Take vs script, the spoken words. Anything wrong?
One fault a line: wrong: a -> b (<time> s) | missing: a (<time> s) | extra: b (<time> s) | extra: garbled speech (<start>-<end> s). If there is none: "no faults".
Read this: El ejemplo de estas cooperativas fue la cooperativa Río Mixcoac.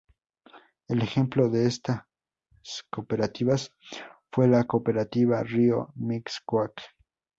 no faults